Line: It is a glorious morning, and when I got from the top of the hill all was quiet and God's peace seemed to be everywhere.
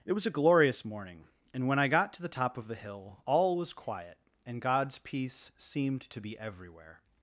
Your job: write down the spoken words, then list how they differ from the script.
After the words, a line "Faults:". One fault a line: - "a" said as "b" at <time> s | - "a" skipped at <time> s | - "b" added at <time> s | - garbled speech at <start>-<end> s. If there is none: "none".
It was a glorious morning, and when I got to the top of the hill all was quiet and God's peace seemed to be everywhere.
Faults:
- "is" said as "was" at 0.1 s
- "from" said as "to" at 2.1 s